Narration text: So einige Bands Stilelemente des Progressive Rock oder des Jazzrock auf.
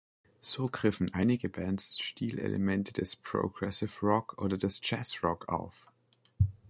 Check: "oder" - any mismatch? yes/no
no